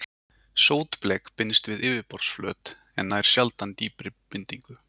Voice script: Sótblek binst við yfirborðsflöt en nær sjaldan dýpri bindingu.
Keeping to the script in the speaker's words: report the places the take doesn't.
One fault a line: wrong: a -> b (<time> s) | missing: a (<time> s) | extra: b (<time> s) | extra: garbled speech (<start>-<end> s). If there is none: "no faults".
no faults